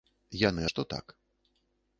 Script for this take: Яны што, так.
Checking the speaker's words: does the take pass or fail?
pass